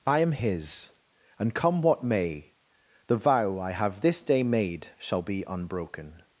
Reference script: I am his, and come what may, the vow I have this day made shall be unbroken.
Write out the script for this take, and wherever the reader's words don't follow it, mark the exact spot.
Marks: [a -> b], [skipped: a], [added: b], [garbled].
I am his, and come what may, the vow I have this day made shall be unbroken.